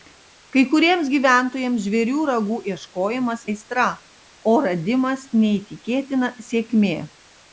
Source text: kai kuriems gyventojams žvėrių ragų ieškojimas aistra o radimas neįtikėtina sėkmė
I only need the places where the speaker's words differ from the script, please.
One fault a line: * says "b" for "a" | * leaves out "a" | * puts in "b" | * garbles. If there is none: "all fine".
all fine